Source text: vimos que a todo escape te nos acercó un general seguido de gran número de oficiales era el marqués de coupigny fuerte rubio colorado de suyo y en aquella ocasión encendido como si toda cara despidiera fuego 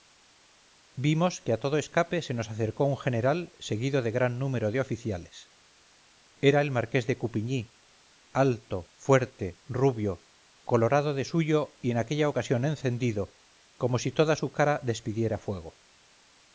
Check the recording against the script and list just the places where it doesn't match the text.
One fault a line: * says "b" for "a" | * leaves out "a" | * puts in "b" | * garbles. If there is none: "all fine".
* says "se" for "te"
* puts in "alto"
* puts in "su"